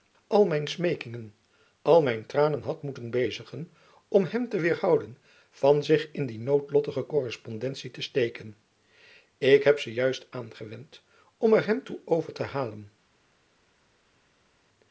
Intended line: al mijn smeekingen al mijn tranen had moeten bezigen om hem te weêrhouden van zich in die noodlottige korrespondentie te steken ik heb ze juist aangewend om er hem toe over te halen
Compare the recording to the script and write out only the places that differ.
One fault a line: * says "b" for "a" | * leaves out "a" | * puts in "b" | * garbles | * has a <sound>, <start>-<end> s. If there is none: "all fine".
all fine